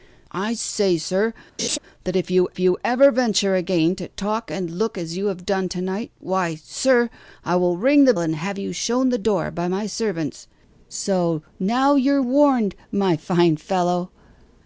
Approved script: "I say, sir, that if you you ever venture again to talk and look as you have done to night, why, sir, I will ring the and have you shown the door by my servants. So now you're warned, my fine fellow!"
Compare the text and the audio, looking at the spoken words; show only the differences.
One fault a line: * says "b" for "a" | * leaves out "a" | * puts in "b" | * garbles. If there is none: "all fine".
all fine